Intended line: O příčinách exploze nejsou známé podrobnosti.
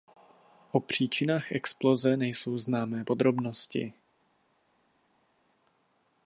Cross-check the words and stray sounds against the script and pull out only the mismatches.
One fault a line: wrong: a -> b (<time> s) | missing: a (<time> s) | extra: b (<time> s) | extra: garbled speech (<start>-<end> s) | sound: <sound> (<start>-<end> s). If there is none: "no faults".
no faults